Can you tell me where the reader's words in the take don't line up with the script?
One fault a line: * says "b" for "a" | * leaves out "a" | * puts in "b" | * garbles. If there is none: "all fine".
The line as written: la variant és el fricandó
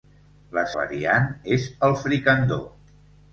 all fine